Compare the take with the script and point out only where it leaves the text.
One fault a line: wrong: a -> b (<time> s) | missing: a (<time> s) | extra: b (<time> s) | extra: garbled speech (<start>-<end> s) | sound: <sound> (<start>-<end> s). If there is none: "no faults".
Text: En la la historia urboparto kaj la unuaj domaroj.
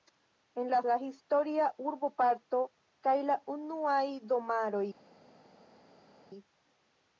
no faults